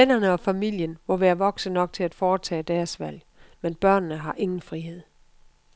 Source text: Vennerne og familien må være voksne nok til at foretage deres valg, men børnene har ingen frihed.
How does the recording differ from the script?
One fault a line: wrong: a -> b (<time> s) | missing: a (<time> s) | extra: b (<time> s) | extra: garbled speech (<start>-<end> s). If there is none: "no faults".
no faults